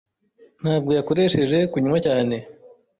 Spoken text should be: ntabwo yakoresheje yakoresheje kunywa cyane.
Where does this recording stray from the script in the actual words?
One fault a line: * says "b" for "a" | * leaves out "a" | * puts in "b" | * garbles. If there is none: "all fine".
* leaves out "yakoresheje"